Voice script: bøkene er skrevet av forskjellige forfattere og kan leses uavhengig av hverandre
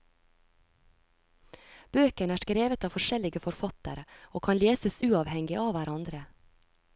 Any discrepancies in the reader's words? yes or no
no